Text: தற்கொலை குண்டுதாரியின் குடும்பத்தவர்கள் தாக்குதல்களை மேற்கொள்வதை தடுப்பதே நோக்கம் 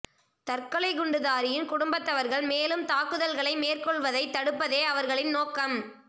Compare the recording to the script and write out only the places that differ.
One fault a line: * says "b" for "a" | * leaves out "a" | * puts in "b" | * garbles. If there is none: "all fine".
* puts in "மேலும்"
* puts in "அவர்களின்"